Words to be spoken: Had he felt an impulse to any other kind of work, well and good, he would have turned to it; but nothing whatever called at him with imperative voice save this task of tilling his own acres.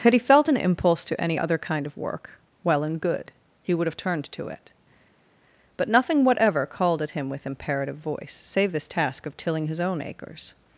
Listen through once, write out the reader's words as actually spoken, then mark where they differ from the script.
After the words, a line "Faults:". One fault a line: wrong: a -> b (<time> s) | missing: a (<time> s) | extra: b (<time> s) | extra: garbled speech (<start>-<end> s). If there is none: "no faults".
Had he felt an impulse to any other kind of work, well and good, he would have turned to it; but nothing whatever called at him with imperative voice save this task of tilling his own acres.
Faults:
no faults